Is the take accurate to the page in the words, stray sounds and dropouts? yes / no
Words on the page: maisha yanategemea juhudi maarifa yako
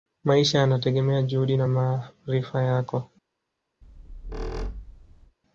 no